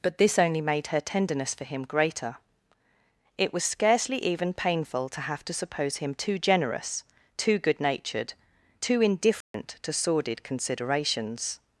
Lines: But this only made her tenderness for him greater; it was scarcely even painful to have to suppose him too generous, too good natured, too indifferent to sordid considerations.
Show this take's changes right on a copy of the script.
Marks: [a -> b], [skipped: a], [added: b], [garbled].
But this only made her tenderness for him greater; it was scarcely even painful to have to suppose him too generous, too good natured, too indifferent to sordid considerations.